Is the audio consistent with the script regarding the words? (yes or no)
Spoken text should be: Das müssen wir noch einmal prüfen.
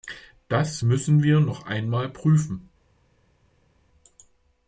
yes